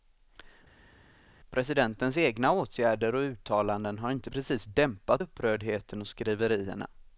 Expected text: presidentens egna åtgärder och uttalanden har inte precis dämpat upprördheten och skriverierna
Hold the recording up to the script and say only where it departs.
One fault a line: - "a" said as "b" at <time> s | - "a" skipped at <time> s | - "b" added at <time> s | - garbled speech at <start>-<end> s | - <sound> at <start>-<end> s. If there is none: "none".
none